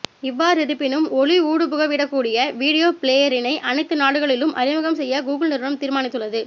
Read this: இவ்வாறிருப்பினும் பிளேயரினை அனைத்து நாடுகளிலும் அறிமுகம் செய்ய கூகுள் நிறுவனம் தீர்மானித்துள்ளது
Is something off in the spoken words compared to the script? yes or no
yes